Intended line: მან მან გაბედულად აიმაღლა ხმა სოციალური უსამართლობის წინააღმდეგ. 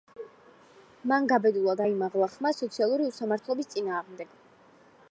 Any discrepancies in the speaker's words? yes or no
yes